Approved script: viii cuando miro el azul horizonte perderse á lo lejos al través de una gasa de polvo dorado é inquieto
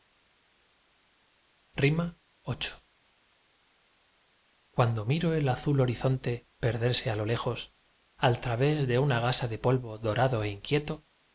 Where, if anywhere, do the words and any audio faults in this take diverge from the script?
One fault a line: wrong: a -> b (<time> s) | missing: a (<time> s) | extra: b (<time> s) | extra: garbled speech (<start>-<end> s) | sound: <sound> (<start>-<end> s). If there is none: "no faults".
no faults